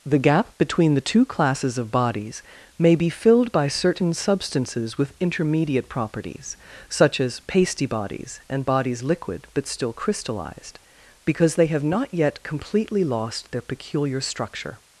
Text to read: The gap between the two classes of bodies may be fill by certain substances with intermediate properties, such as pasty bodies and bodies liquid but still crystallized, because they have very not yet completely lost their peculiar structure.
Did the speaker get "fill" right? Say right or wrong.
wrong